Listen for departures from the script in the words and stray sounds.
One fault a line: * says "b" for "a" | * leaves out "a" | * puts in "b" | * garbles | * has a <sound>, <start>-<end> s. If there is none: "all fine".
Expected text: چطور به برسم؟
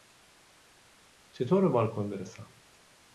* puts in "بالکن"